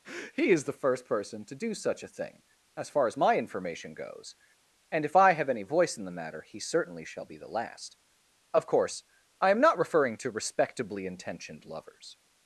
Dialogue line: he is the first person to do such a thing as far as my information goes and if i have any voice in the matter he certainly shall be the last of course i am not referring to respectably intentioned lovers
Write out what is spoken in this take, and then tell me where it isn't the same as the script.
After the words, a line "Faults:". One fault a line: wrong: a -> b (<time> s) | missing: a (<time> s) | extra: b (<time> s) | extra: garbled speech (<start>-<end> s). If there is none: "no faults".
he is the first person to do such a thing as far as my information goes and if i have any voice in the matter he certainly shall be the last of course i am not referring to respectably intentioned lovers
Faults:
no faults